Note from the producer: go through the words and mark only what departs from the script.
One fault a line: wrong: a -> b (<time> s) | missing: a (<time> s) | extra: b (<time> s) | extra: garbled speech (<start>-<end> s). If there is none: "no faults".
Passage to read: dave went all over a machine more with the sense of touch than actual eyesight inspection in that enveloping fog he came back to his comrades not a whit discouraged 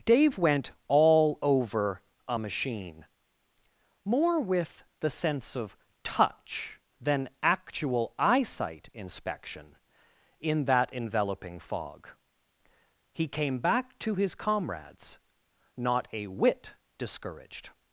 no faults